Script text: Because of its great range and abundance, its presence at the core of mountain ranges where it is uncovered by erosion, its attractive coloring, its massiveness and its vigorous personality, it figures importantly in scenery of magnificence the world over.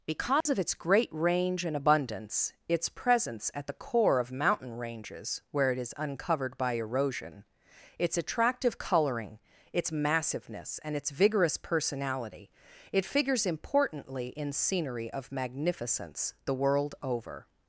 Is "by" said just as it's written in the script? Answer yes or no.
yes